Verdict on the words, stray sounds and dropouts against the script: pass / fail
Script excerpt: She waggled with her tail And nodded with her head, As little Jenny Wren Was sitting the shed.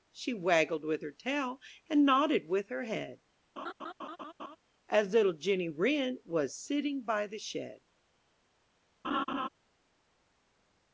fail